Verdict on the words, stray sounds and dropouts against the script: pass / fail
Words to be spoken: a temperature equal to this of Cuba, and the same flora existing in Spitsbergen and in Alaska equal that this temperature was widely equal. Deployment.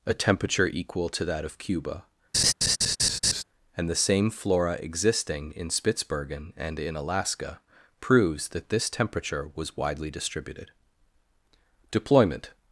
fail